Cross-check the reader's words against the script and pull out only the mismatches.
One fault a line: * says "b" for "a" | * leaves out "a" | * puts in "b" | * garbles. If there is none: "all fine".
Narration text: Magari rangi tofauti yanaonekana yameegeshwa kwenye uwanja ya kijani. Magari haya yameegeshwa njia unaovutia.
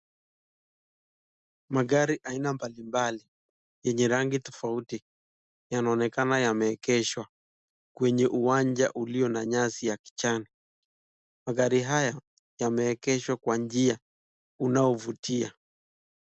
* puts in "aina mbalimbali yenye"
* puts in "ulio na nyasi"
* puts in "kwa"